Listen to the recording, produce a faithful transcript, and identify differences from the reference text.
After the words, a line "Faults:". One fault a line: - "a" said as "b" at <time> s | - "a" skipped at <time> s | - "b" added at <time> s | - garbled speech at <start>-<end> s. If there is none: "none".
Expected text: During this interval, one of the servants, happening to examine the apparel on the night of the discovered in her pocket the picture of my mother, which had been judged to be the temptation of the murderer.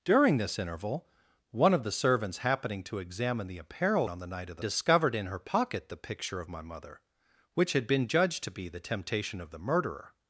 During this interval, one of the servants, happening to examine the apparel on the night of the discovered in her pocket the picture of my mother, which had been judged to be the temptation of the murderer.
Faults:
none